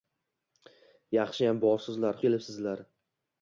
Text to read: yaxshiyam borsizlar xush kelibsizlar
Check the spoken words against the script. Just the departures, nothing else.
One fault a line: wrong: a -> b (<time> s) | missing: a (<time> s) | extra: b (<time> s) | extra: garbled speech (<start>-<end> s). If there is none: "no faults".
missing: xush (2.2 s)